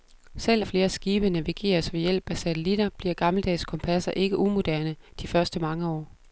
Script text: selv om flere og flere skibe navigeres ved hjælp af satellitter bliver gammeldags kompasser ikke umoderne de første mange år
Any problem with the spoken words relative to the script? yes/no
yes